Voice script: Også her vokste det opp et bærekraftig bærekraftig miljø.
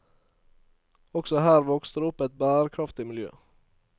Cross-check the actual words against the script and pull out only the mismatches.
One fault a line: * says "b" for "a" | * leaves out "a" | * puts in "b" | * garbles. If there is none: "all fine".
* leaves out "bærekraftig"